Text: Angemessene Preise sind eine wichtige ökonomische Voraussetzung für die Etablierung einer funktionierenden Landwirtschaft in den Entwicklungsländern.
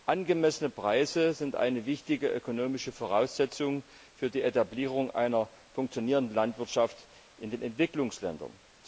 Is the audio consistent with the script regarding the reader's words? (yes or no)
yes